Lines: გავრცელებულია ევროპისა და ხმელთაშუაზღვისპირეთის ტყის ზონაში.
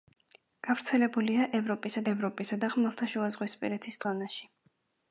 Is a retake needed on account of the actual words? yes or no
yes